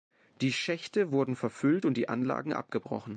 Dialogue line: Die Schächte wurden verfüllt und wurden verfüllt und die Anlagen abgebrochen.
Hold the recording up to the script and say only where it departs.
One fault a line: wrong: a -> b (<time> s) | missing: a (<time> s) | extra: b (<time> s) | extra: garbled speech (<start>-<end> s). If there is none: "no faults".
missing: wurden verfüllt und (2.0 s)